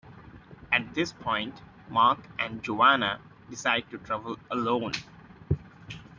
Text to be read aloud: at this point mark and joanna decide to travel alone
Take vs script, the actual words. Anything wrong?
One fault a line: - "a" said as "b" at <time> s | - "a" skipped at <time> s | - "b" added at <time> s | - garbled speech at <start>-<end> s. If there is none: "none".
none